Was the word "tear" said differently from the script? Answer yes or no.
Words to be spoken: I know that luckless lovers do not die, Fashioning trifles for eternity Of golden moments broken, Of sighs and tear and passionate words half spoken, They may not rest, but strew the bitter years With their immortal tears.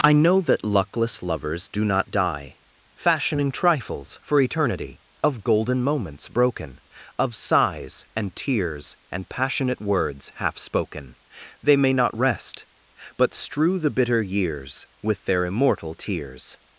yes